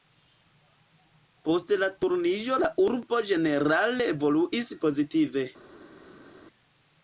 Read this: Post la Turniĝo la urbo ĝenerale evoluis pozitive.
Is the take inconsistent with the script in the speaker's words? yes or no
no